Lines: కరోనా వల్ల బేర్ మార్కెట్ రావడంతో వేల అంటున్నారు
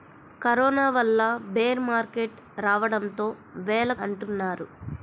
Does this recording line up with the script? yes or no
yes